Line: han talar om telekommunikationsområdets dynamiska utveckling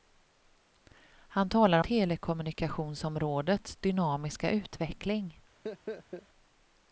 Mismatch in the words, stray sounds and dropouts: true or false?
true